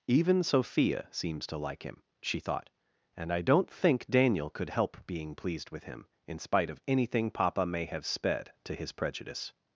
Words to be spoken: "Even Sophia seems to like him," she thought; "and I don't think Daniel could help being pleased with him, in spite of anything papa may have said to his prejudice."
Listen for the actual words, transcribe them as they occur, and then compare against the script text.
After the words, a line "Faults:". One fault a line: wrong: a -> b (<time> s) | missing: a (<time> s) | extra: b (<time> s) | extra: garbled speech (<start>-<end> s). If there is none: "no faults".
"Even Sophia seems to like him," she thought; "and I don't think Daniel could help being pleased with him, in spite of anything papa may have sped to his prejudice."
Faults:
wrong: said -> sped (8.1 s)